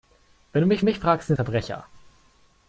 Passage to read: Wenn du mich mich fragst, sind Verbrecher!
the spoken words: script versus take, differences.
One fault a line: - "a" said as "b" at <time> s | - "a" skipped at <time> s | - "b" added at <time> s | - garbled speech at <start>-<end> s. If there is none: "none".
none